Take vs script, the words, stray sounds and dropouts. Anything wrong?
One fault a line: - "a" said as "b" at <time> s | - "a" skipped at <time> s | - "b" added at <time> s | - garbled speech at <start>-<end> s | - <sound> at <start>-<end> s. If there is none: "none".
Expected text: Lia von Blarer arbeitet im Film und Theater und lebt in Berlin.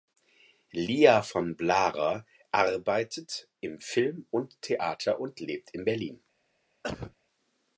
- cough at 6.8-7.2 s